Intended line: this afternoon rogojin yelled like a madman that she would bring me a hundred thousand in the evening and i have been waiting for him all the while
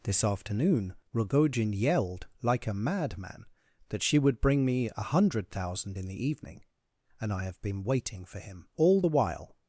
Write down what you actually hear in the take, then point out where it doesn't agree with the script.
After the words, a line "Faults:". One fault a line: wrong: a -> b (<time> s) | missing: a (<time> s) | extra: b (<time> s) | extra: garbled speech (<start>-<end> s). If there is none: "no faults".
this afternoon rogojin yelled like a madman that she would bring me a hundred thousand in the evening and i have been waiting for him all the while
Faults:
no faults